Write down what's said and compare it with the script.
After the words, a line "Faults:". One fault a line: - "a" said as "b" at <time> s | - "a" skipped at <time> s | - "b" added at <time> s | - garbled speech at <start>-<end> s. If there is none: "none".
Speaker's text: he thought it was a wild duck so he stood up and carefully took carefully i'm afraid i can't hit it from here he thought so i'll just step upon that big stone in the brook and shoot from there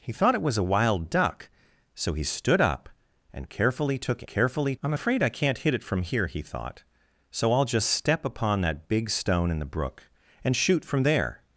he thought it was a wild duck so he stood up and carefully took carefully i'm afraid i can't hit it from here he thought so i'll just step upon that big stone in the brook and shoot from there
Faults:
none